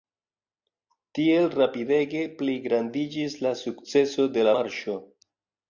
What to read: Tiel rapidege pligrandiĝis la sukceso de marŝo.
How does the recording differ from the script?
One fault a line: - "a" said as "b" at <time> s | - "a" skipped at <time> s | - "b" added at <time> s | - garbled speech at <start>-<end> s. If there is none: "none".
none